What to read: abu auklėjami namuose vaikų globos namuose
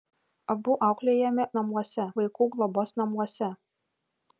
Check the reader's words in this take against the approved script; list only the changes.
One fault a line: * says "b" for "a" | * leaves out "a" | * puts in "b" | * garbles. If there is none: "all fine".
all fine